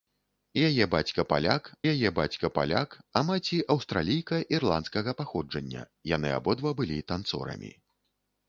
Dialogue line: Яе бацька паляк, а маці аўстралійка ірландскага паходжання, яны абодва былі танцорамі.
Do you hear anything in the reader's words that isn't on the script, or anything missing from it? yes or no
yes